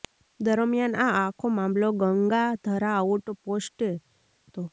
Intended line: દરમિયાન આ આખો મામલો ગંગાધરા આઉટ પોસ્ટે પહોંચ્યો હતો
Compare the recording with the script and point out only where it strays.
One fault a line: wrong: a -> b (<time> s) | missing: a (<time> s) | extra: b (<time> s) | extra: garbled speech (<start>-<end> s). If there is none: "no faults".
missing: પહોંચ્યો (3.9 s)